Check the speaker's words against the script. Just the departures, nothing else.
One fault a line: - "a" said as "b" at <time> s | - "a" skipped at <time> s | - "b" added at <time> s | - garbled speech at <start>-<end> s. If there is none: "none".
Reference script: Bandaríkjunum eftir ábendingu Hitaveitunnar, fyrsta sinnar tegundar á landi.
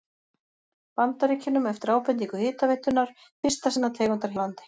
none